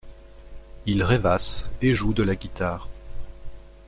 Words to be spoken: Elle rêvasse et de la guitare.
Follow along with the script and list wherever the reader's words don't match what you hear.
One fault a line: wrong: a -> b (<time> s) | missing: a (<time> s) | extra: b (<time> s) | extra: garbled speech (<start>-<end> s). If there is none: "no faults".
wrong: Elle -> Il (0.9 s)
extra: joue (1.9 s)